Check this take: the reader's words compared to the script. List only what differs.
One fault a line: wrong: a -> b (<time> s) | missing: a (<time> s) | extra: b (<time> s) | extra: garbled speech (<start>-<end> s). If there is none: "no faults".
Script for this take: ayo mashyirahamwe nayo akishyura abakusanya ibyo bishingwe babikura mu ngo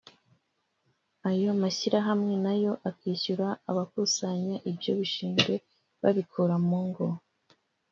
no faults